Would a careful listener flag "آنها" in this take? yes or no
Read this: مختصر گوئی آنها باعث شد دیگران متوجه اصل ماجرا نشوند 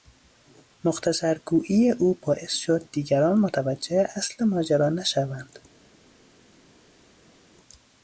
yes